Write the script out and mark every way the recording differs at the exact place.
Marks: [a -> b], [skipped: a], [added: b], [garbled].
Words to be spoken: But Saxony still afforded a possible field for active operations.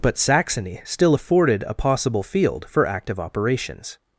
But Saxony still afforded a possible field for active operations.